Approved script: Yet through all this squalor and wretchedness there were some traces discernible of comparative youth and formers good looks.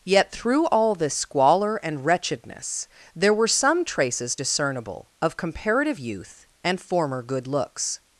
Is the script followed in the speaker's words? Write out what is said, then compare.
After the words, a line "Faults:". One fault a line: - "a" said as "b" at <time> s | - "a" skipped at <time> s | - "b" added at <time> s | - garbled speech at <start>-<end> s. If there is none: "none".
Yet through all this squalor and wretchedness there were some traces discernible of comparative youth and former good looks.
Faults:
- "formers" said as "former" at 6.8 s